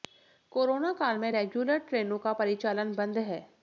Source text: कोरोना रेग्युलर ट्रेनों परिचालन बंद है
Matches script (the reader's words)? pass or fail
fail